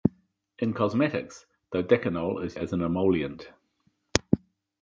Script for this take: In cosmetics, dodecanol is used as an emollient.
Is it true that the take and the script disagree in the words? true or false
true